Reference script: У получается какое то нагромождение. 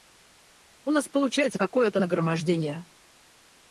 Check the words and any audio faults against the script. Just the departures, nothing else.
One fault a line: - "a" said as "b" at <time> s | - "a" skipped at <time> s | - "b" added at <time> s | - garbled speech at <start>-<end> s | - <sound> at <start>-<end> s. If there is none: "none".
- "нас" added at 0.9 s